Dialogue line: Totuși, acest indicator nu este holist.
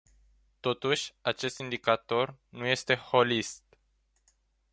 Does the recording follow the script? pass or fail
pass